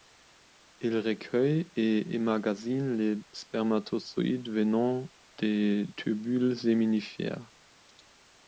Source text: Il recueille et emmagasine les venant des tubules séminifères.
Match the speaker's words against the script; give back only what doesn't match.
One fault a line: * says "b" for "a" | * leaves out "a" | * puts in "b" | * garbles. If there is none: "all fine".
* puts in "spermatozoïdes"